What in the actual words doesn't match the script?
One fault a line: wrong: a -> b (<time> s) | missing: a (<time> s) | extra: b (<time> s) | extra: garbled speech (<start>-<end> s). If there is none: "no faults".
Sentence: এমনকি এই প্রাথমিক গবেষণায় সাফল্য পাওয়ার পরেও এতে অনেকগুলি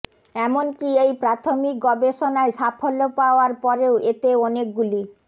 no faults